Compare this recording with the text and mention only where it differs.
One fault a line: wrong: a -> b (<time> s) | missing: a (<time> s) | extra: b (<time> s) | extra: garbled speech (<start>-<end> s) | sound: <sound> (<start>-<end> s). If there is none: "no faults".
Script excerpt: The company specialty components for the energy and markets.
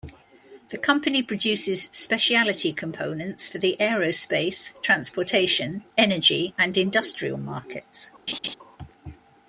extra: produces (1.2 s)
extra: aerospace transportation (3.8 s)
extra: industrial (6.8 s)
sound: laugh (8.3-8.5 s)